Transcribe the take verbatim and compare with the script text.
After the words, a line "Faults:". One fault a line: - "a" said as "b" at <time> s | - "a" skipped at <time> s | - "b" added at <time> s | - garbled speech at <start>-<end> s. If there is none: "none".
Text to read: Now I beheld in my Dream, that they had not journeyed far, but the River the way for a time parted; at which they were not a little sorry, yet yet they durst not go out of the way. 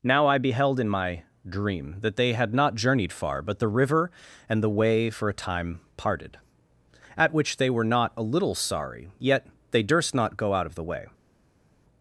Now I beheld in my Dream, that they had not journeyed far, but the River and the way for a time parted; at which they were not a little sorry, yet they durst not go out of the way.
Faults:
- "and" added at 4.5 s
- "yet" skipped at 9.5 s